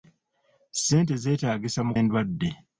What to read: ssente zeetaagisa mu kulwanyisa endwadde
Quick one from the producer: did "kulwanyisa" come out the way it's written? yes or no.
no